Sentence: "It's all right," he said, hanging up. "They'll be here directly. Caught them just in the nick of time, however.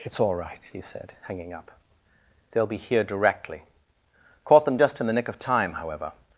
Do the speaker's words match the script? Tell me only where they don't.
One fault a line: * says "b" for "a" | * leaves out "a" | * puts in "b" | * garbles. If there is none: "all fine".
all fine